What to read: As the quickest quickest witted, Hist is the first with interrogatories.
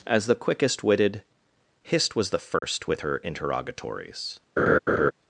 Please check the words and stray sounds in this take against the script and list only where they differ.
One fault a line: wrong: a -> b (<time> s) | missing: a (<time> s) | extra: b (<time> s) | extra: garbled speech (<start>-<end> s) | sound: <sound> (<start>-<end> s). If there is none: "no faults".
missing: quickest (0.8 s)
wrong: is -> was (2.1 s)
sound: dropout (2.6-2.6 s)
extra: her (3.0 s)
sound: laugh (4.6-5.1 s)